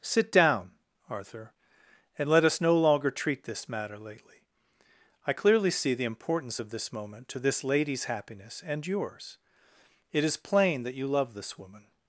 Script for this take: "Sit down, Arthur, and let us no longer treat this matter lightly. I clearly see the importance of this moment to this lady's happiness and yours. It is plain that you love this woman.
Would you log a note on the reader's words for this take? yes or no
yes